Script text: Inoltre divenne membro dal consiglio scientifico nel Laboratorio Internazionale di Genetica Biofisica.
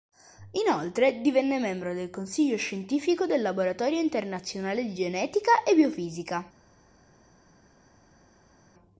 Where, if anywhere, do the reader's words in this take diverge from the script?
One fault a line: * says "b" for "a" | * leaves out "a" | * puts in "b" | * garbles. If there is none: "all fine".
* says "del" for "dal"
* says "del" for "nel"
* puts in "e"